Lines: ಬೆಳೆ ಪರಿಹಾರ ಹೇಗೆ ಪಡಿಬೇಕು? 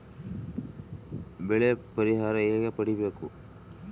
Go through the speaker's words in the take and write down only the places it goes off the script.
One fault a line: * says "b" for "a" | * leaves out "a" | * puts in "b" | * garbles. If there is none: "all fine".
all fine